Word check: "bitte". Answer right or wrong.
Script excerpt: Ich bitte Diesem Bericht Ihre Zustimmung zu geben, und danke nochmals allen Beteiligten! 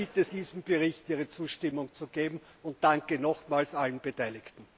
right